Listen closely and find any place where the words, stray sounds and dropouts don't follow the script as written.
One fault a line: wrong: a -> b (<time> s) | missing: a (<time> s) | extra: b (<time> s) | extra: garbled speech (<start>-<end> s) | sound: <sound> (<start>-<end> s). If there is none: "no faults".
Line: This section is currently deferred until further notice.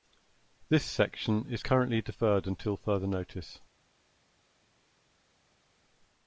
no faults